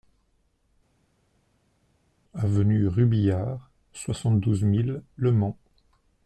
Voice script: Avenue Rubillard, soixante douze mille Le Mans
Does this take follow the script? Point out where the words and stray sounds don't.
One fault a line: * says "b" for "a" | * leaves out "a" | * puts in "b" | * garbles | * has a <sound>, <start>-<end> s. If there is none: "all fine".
all fine